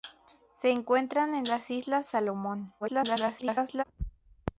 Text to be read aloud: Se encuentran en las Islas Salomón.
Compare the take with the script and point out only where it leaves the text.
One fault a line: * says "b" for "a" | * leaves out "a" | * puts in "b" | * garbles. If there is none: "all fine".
* garbles